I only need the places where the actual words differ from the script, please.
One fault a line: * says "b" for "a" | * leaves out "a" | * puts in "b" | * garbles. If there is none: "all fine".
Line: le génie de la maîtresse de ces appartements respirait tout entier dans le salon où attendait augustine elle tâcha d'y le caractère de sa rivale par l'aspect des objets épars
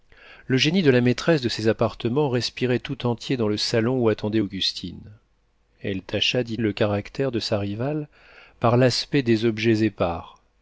all fine